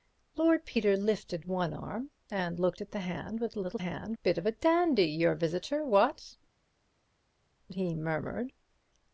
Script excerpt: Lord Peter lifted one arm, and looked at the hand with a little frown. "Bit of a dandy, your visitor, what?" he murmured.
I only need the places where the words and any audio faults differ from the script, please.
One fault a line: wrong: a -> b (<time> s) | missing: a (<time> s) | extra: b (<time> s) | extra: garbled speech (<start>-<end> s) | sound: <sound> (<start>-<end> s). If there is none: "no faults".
wrong: frown -> hand (3.8 s)